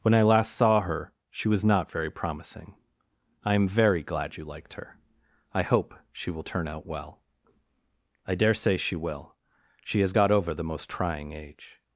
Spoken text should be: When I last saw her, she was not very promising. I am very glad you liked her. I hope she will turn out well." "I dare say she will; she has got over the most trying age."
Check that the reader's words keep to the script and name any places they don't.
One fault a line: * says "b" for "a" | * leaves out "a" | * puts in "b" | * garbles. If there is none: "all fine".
all fine